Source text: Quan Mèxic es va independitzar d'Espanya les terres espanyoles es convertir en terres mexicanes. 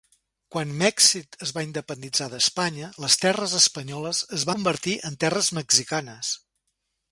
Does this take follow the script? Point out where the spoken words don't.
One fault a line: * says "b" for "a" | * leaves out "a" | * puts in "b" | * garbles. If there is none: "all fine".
all fine